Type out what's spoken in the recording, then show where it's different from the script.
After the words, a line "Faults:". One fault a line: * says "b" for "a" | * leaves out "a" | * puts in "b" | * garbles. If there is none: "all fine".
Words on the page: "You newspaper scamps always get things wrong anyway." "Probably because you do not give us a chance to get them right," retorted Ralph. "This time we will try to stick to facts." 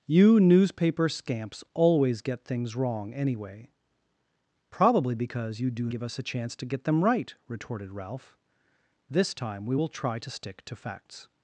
"You newspaper scamps always get things wrong anyway." "Probably because you do give us a chance to get them right," retorted Ralph. "This time we will try to stick to facts."
Faults:
* leaves out "not"